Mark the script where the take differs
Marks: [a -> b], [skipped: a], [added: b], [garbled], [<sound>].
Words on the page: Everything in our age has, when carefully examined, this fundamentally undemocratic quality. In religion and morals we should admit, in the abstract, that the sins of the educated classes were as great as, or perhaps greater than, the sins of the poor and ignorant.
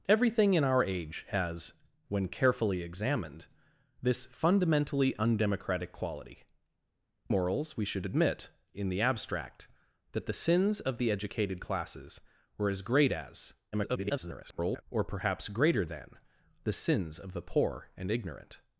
Everything in our age has, when carefully examined, this fundamentally undemocratic quality. [skipped: In religion and] morals we should admit, in the abstract, that the sins of the educated classes were as great as, [garbled] or perhaps greater than, the sins of the poor and ignorant.